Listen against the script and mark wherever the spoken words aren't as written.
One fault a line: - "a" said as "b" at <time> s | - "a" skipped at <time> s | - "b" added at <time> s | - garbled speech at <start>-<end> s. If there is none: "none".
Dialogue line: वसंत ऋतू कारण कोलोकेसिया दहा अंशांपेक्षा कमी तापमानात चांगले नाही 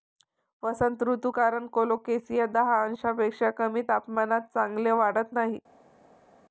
- "वाढत" added at 4.9 s